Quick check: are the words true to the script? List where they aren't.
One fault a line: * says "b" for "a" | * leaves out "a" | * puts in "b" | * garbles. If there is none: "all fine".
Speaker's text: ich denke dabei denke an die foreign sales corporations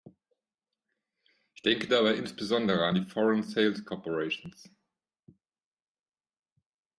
* says "insbesondere" for "denke"